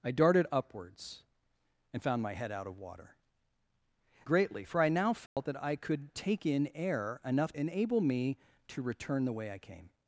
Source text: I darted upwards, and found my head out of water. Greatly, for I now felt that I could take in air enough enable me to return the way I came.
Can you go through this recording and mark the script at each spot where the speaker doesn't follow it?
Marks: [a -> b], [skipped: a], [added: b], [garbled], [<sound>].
I darted upwards, and found my head out of water. Greatly, for I now felt [dropout] that I could take in air enough enable me to return the way I came.